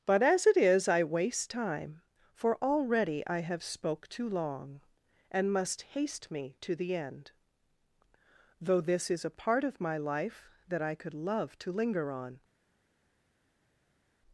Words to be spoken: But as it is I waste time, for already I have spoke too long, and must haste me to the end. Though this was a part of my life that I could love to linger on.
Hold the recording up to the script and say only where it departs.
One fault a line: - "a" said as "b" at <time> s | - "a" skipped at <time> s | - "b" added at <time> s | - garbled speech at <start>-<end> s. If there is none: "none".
- "was" said as "is" at 9.1 s